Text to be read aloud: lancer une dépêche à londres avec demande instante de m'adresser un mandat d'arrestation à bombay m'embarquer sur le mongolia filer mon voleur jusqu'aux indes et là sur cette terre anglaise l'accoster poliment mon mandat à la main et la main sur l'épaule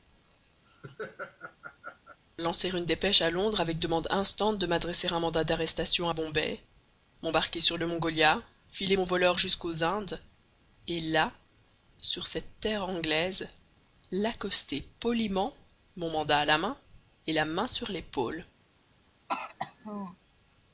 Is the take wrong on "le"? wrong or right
right